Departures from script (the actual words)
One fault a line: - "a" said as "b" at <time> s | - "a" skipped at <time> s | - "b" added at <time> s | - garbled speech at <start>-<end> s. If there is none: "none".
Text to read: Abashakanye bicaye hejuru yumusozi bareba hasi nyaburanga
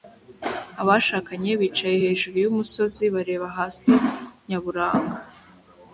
none